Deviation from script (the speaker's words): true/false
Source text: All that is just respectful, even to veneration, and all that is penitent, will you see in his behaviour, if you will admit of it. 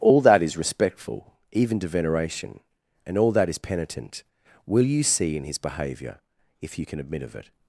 true